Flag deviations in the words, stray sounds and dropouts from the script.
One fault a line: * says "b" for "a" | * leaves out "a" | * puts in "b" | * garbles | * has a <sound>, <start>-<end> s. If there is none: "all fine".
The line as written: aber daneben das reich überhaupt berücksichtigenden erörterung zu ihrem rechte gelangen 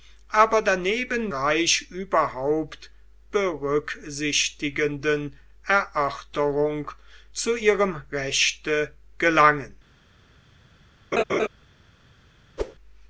* leaves out "das"
* has a laugh, 11.1-11.5 s
* has a whoosh, 12.6-12.8 s